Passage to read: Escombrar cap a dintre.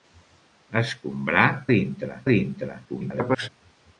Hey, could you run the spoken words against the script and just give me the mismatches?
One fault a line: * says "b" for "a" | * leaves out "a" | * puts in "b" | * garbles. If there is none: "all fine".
* says "dintre" for "cap"
* garbles